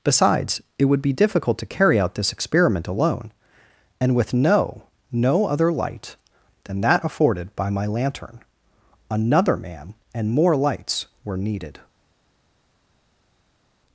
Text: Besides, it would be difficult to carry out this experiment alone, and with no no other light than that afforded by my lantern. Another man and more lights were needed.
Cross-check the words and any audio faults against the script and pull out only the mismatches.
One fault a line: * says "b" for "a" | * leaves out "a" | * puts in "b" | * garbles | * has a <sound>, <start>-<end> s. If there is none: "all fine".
all fine